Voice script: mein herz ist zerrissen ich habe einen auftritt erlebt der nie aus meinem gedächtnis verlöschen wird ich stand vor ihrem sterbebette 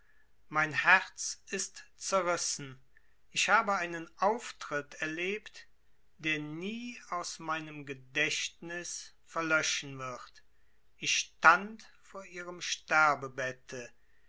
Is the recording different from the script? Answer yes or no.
no